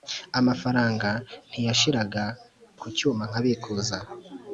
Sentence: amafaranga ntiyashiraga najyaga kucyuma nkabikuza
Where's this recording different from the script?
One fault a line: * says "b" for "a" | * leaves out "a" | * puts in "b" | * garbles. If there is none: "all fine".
* leaves out "najyaga"